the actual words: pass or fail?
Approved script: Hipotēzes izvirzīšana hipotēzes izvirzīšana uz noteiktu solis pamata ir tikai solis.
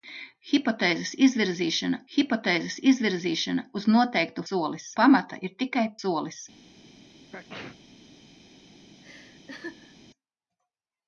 pass